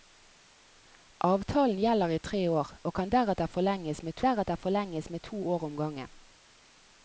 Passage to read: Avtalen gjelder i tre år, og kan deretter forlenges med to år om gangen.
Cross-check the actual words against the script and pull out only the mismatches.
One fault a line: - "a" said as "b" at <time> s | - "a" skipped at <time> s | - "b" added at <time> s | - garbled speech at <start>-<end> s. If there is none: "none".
- "deretter forlenges med" added at 4.3 s